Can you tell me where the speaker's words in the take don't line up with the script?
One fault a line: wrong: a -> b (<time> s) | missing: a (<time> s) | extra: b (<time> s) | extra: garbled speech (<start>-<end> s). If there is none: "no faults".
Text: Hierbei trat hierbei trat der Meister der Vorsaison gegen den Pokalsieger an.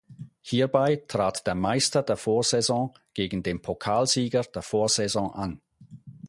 missing: hierbei trat (1.4 s)
extra: der Vorsaison (4.4 s)